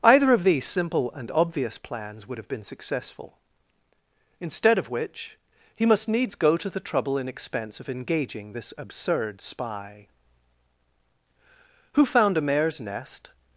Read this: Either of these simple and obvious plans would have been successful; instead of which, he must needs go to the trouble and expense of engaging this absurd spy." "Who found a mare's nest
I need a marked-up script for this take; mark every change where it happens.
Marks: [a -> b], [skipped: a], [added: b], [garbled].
Either of these simple and obvious plans would have been successful; instead of which, he must needs go to the trouble and expense of engaging this absurd spy." "Who found a mare's nest